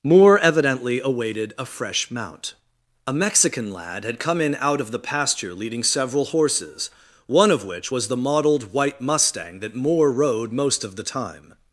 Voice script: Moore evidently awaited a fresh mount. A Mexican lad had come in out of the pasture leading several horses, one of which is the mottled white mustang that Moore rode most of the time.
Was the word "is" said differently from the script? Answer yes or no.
yes